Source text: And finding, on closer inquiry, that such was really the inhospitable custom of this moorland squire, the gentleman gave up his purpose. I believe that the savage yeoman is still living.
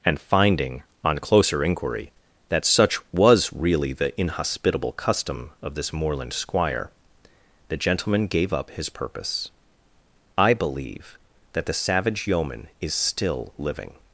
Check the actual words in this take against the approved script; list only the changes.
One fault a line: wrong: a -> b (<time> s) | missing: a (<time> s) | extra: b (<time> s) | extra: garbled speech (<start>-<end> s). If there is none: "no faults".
no faults